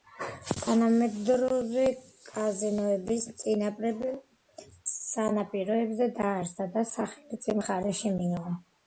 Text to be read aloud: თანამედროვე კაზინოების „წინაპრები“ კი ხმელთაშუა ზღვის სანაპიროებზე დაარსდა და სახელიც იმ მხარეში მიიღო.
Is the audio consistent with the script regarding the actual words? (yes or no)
no